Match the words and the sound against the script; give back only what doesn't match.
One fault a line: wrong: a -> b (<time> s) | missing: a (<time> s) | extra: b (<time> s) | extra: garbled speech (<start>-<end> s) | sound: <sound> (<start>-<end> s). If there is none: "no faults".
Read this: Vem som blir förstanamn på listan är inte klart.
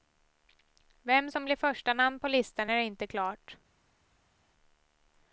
no faults